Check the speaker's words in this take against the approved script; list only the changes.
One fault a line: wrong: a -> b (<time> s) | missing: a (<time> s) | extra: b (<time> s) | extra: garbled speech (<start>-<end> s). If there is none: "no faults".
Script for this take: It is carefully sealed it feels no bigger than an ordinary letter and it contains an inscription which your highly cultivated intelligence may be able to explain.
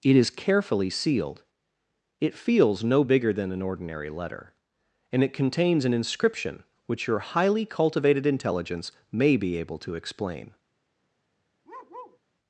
no faults